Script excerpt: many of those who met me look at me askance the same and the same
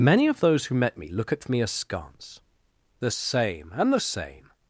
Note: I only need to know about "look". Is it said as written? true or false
true